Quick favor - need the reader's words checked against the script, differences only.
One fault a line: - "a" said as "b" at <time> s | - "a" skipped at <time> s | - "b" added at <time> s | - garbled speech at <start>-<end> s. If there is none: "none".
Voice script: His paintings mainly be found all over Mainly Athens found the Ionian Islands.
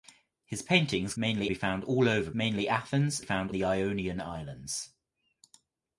none